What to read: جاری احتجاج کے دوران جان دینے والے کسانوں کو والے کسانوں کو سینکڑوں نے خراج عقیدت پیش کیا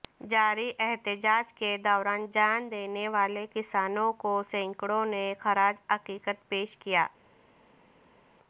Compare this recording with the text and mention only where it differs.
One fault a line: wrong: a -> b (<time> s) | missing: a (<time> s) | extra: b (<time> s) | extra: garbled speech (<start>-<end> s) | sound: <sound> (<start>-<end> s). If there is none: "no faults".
missing: والے کسانوں کو (4.4 s)